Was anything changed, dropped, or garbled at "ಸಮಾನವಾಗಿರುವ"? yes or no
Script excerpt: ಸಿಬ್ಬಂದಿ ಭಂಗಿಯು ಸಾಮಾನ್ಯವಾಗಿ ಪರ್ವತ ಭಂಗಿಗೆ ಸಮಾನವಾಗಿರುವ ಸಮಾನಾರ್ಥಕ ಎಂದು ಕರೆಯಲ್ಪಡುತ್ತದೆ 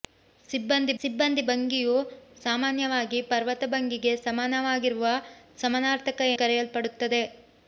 no